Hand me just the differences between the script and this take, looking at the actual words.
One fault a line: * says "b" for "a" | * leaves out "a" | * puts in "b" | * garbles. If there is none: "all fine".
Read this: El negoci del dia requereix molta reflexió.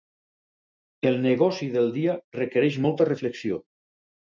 all fine